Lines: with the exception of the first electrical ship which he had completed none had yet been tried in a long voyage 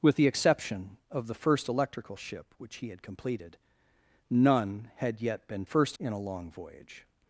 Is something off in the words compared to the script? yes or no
yes